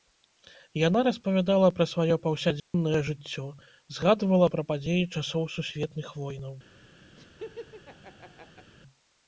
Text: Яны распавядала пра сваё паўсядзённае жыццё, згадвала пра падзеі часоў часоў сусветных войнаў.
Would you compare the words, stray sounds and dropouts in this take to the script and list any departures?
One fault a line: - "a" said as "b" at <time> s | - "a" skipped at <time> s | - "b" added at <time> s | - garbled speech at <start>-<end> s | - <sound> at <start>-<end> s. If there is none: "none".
- "Яны" said as "Яна" at 0.9 s
- dropout at 2.6-2.7 s
- "часоў" skipped at 5.5 s
- laugh at 7.2-8.7 s